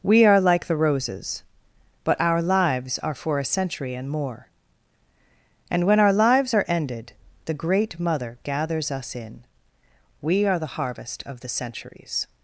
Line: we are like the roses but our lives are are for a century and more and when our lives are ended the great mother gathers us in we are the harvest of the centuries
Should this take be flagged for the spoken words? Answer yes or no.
yes